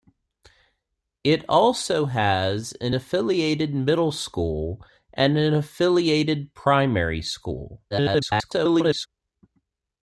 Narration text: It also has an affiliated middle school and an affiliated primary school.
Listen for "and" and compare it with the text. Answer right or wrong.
right